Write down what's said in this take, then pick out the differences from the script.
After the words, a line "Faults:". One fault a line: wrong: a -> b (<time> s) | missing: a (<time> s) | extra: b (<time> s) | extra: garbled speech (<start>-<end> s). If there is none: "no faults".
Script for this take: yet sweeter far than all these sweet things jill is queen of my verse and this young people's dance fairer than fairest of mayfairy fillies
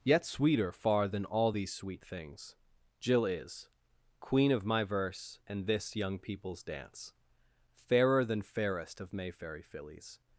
yet sweeter far than all these sweet things jill is queen of my verse and this young people's dance fairer than fairest of mayfairy fillies
Faults:
no faults